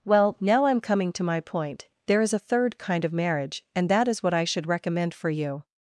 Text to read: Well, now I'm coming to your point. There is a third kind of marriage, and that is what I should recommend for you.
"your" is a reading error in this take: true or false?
true